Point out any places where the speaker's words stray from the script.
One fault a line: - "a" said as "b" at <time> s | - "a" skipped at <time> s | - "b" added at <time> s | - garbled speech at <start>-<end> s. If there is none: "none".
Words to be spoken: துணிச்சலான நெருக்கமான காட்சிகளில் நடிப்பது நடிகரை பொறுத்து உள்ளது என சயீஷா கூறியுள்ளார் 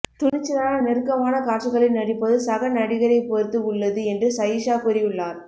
- "சக" added at 2.4 s
- "என" said as "என்று" at 4.1 s